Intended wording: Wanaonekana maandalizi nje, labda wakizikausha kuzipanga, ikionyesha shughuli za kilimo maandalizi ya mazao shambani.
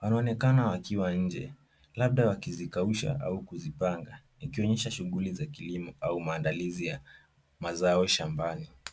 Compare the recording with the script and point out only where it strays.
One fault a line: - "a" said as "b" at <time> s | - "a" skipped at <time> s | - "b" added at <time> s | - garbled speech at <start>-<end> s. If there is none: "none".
- "maandalizi" said as "wakiwa" at 0.7 s
- "au" added at 3.2 s
- "au" added at 6.0 s